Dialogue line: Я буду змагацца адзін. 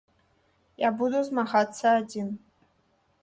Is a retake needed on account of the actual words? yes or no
no